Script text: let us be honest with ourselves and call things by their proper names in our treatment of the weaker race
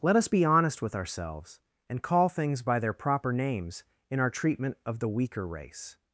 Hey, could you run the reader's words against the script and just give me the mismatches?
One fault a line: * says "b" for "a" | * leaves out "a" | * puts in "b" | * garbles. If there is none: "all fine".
all fine